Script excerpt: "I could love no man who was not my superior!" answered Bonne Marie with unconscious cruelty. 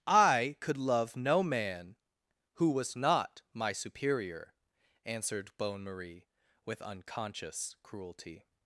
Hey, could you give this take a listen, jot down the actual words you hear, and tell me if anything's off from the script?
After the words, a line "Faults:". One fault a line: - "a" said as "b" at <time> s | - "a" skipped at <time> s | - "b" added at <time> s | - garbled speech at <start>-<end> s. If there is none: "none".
"I could love no man who was not my superior!" answered Bonne Marie with unconscious cruelty.
Faults:
none